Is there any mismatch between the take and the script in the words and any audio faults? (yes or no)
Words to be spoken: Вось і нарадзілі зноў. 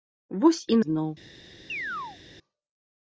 yes